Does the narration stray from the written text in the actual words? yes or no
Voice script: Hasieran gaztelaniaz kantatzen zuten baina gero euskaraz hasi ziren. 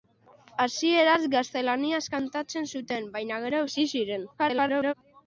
yes